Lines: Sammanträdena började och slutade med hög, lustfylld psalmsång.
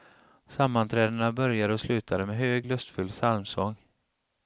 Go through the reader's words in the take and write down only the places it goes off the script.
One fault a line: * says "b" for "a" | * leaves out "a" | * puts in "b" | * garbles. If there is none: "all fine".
all fine